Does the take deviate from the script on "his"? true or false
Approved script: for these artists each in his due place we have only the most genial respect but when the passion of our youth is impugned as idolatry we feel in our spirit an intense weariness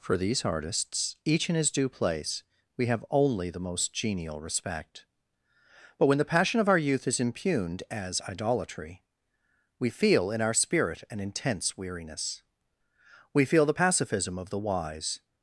false